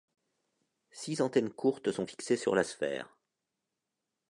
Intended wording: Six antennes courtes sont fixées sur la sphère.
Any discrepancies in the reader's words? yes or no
no